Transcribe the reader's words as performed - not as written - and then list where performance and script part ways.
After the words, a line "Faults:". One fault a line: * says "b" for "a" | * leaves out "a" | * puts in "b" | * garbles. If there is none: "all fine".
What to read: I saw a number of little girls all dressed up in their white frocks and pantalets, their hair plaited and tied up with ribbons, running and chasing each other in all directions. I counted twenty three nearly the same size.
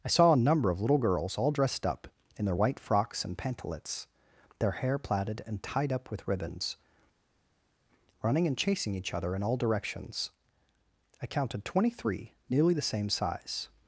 I saw a number of little girls all dressed up in their white frocks and pantalets, their hair plaited and tied up with ribbons, running and chasing each other in all directions. I counted twenty three nearly the same size.
Faults:
all fine